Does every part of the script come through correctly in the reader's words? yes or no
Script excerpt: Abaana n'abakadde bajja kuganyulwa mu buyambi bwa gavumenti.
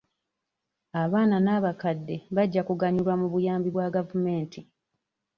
yes